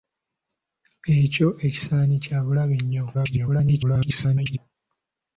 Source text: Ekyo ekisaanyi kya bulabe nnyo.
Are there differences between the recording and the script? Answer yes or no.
yes